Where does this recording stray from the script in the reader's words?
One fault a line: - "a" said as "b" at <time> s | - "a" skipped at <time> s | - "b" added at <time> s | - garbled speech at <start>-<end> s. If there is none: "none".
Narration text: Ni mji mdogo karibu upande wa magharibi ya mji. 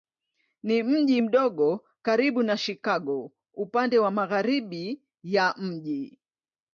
- "na Chicago" added at 2.4 s